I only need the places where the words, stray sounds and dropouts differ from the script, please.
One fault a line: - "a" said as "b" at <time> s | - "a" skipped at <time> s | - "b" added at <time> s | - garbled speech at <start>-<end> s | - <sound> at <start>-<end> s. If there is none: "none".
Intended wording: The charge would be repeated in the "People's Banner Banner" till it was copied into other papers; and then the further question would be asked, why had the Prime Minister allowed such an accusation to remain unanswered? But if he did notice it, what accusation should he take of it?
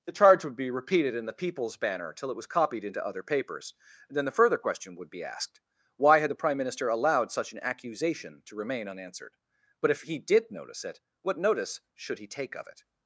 - "Banner" skipped at 2.1 s
- "accusation" said as "notice" at 11.4 s